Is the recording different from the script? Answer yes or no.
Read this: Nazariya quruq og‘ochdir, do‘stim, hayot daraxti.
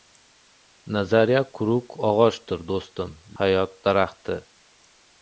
no